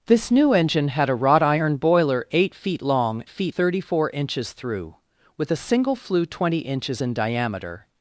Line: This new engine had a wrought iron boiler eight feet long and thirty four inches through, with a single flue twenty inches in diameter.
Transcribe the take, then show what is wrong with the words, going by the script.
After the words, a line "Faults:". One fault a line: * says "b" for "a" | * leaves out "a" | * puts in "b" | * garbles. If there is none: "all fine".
This new engine had a wrought iron boiler eight feet long feet thirty four inches through, with a single flue twenty inches in diameter.
Faults:
* says "feet" for "and"